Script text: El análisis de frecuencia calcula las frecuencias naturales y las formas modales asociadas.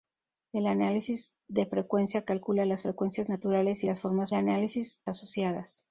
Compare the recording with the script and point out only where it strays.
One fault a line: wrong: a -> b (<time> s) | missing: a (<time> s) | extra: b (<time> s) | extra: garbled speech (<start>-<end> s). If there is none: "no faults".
wrong: modales -> análisis (4.3 s)